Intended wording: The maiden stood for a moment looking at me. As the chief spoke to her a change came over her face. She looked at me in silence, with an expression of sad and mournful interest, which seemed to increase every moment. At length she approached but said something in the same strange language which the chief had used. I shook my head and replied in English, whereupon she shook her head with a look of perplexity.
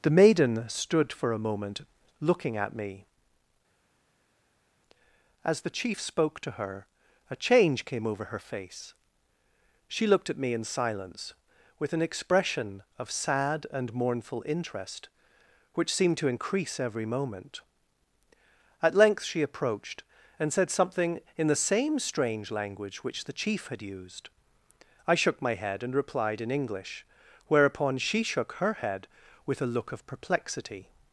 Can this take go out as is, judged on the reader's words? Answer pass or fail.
fail